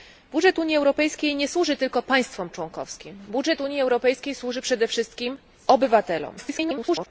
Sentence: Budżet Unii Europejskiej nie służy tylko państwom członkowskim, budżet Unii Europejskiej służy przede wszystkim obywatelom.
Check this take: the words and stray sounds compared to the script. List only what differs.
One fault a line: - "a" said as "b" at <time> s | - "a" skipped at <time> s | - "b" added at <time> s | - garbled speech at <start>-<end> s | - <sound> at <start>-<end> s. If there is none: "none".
- garbled speech at 6.4-7.1 s